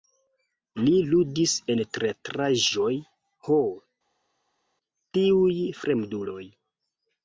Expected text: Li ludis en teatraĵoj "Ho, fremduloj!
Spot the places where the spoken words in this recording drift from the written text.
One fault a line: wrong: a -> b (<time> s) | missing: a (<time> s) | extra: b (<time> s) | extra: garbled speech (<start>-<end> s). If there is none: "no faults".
extra: tiuj (5.2 s)